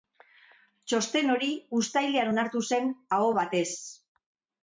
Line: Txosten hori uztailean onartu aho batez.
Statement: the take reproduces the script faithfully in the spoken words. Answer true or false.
false